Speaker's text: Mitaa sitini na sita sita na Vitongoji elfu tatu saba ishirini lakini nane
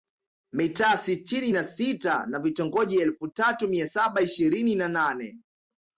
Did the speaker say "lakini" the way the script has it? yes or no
no